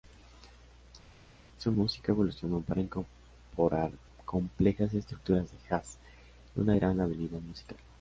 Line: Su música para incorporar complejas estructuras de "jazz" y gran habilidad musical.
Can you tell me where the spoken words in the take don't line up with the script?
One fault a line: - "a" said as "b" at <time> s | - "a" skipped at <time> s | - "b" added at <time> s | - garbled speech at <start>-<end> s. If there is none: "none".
- "evolucionó" added at 2.1 s
- "una" added at 6.6 s